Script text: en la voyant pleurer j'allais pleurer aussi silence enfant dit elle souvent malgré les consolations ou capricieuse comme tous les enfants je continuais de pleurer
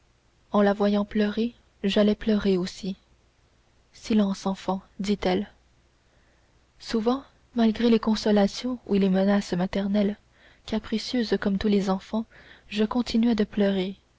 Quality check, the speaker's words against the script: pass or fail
fail